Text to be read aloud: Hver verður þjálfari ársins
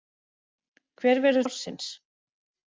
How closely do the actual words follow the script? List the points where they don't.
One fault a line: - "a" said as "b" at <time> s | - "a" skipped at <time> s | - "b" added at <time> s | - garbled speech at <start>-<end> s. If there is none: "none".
- "þjálfari" skipped at 1.4 s